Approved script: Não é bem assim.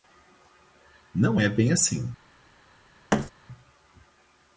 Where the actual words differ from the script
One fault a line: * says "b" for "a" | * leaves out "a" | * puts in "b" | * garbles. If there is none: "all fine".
all fine